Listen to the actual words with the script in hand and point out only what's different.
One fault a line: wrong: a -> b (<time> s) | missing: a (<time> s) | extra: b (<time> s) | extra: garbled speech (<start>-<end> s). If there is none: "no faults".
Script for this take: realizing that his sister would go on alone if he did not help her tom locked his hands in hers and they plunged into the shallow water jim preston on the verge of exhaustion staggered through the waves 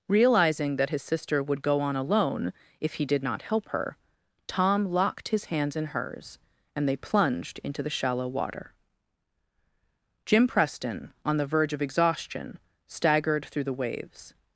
no faults